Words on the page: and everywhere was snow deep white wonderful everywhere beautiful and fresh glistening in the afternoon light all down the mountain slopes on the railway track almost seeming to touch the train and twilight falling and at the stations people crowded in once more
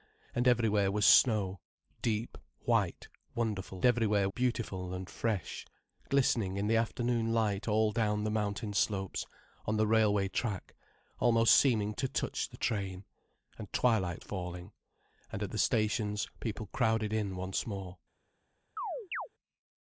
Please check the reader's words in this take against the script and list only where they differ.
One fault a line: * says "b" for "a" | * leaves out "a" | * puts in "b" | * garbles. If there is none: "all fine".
all fine